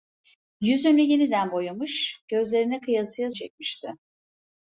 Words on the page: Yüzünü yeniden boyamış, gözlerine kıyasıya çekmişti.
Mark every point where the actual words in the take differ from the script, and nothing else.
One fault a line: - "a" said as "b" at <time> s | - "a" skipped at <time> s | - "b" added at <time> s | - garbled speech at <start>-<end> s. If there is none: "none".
none